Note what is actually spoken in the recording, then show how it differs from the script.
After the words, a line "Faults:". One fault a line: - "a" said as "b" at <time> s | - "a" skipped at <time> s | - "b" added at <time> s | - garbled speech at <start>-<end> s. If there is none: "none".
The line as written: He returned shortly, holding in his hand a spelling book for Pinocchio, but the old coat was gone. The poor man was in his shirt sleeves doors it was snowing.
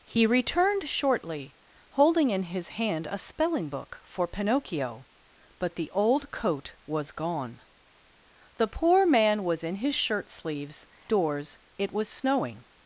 He returned shortly, holding in his hand a spelling book for Pinocchio, but the old coat was gone. The poor man was in his shirt sleeves doors it was snowing.
Faults:
none